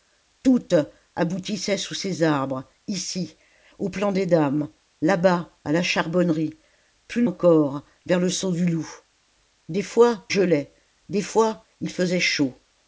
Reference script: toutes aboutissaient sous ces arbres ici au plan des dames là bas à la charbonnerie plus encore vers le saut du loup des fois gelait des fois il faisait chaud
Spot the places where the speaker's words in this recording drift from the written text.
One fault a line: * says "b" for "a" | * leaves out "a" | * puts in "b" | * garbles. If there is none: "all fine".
all fine